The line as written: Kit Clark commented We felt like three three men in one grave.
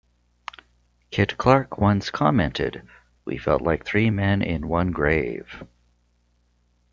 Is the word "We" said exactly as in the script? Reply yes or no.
yes